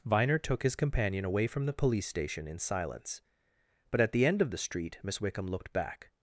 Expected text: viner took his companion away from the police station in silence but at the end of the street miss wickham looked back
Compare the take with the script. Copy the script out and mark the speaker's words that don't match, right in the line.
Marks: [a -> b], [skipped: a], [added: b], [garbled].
viner took his companion away from the police station in silence but at the end of the street miss wickham looked back